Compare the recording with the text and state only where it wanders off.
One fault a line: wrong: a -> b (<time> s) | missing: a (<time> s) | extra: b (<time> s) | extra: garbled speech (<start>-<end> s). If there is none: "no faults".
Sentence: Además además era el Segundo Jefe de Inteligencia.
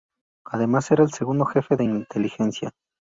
missing: además (0.9 s)